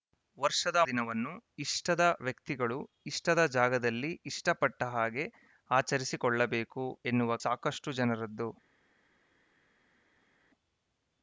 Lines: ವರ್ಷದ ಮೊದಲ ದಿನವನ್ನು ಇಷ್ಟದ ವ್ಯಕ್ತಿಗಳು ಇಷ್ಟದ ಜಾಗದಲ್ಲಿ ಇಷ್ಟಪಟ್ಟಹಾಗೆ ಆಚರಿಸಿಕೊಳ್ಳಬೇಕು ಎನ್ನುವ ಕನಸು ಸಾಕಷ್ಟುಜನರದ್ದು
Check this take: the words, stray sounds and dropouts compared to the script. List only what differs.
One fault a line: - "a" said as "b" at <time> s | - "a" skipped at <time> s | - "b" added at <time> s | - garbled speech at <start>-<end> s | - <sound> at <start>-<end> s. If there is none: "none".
- "ಮೊದಲ" skipped at 0.8 s
- "ಕನಸು" skipped at 7.4 s